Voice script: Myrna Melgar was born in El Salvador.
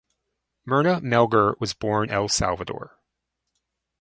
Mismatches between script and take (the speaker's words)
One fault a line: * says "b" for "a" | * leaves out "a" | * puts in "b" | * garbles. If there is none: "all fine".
* leaves out "in"